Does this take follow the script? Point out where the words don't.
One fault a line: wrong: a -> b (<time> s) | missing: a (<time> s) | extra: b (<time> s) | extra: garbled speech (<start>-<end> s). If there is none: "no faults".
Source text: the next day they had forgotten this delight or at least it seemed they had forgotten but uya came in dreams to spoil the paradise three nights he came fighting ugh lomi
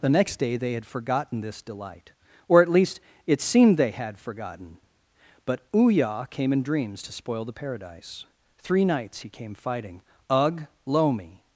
no faults